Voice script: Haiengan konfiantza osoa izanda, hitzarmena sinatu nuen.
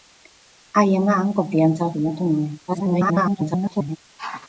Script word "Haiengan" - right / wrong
right